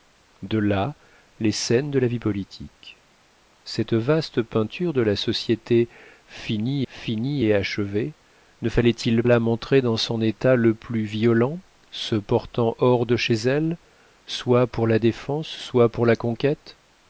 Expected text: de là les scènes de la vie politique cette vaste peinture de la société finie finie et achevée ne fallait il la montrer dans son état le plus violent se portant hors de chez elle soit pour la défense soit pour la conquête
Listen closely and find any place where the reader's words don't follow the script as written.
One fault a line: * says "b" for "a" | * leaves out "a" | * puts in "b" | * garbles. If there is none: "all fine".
all fine